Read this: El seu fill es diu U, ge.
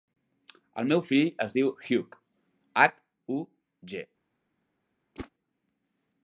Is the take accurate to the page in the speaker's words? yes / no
no